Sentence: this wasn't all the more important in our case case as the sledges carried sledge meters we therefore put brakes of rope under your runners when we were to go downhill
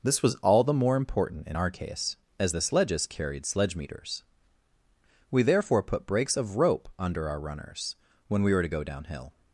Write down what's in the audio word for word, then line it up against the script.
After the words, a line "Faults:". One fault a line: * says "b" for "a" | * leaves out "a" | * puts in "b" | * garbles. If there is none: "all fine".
this was all the more important in our case as the sledges carried sledge meters we therefore put brakes of rope under our runners when we were to go downhill
Faults:
* says "was" for "wasn't"
* leaves out "case"
* says "our" for "your"